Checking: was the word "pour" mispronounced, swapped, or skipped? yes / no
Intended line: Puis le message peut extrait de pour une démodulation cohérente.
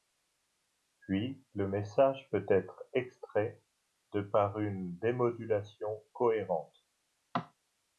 yes